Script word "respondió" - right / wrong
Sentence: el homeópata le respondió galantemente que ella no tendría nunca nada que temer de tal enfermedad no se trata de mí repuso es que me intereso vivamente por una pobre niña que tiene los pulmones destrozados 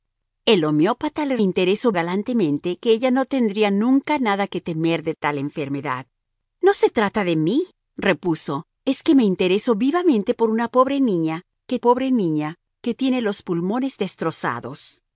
wrong